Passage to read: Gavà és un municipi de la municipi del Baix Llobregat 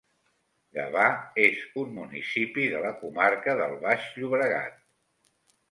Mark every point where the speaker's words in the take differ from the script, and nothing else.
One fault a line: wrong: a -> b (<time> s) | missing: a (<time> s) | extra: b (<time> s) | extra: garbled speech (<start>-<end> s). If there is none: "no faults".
wrong: municipi -> comarca (3.0 s)